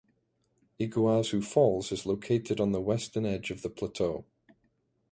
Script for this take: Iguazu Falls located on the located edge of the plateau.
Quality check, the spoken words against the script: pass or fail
fail